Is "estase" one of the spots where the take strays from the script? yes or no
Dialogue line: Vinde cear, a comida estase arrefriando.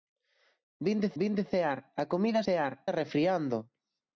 yes